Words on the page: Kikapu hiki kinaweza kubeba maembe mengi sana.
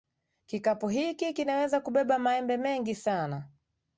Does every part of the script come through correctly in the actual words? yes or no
yes